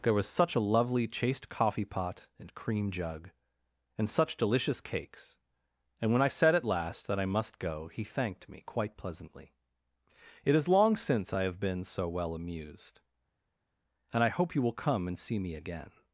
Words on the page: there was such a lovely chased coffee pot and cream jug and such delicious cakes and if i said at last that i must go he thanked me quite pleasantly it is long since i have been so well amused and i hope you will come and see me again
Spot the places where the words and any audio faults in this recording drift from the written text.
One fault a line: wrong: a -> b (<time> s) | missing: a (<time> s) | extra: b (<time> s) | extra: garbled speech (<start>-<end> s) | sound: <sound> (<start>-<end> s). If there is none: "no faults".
wrong: if -> when (6.1 s)